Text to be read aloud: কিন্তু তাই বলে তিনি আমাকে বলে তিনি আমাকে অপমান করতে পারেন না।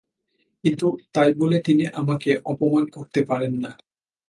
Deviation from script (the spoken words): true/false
true